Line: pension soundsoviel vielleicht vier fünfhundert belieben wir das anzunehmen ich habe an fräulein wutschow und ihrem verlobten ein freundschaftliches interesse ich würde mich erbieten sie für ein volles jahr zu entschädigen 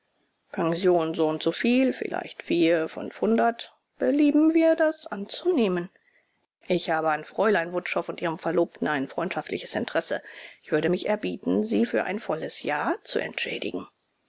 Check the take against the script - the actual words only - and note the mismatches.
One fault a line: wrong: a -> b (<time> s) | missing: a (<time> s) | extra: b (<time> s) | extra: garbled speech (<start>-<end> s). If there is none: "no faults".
no faults